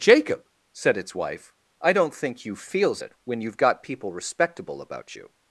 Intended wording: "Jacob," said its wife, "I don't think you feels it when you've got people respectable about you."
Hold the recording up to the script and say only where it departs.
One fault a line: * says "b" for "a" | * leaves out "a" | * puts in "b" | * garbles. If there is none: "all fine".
all fine